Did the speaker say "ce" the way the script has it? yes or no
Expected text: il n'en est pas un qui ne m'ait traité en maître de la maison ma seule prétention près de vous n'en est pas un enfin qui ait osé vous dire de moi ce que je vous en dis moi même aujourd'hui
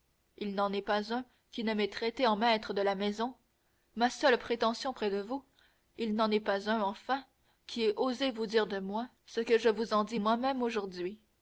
yes